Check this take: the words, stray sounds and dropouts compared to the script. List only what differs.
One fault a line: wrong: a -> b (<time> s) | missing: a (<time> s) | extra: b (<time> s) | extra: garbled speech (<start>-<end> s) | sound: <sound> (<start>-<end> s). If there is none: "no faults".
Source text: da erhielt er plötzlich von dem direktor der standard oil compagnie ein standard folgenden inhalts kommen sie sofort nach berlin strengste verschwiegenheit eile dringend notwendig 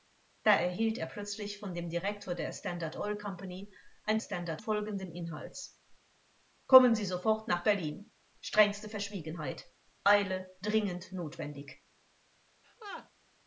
sound: laugh (12.6-13.1 s)